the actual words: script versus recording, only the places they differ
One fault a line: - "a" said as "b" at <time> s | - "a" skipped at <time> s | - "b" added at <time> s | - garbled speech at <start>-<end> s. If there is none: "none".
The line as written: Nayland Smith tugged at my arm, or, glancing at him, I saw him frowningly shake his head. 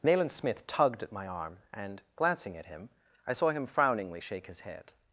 - "or" said as "and" at 1.7 s